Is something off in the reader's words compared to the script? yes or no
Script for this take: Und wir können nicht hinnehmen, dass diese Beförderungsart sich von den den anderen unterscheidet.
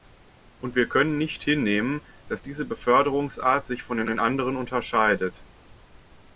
no